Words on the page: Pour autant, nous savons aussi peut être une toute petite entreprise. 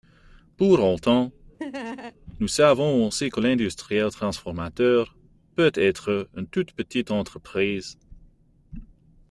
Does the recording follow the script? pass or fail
fail